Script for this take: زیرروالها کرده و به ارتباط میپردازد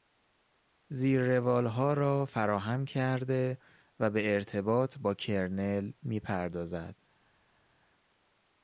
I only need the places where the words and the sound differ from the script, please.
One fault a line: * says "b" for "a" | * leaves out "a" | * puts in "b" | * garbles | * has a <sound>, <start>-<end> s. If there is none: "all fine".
* puts in "را فراهم"
* puts in "با کرنل"